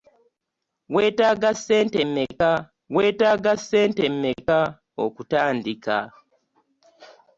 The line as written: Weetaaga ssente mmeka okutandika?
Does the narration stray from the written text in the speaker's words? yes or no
yes